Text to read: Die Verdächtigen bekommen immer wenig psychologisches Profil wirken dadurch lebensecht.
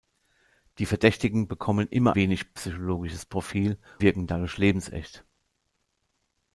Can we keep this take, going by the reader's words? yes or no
yes